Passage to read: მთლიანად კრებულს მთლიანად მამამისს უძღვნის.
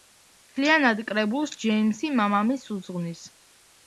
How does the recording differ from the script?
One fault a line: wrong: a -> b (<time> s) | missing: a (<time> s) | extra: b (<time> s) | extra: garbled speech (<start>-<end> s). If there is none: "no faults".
wrong: მთლიანად -> ჯეიმსი (1.6 s)